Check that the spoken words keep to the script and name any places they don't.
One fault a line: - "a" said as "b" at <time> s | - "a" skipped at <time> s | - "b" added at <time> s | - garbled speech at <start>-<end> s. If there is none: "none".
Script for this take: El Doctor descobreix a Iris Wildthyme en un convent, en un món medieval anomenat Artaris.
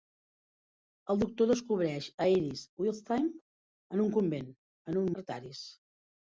- "món medieval anomenat" skipped at 5.1 s